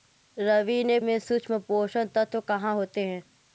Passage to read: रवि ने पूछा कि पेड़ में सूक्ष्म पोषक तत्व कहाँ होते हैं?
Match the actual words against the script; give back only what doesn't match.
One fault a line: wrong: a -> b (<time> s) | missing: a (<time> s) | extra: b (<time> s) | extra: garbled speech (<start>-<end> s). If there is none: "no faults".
missing: पूछा कि पेड़ (1.0 s)